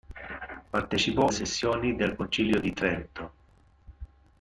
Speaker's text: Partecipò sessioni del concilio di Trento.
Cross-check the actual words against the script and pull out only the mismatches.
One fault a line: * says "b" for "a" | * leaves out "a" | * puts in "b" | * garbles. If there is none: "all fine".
all fine